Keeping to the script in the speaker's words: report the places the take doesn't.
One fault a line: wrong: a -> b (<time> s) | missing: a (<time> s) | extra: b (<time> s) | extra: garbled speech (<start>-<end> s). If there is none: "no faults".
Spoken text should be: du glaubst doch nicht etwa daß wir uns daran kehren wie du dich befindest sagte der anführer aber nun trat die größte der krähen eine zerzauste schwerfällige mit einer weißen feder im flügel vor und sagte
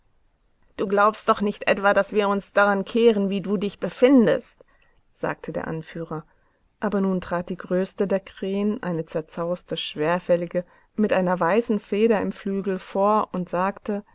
no faults